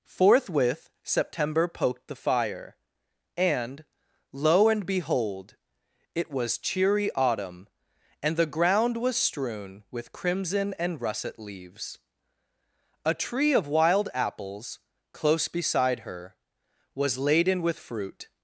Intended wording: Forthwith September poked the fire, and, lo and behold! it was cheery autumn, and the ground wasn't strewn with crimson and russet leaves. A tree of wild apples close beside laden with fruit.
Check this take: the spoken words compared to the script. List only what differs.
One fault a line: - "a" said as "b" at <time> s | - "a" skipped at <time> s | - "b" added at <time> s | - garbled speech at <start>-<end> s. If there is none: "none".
- "wasn't" said as "was" at 9.0 s
- "her was" added at 16.0 s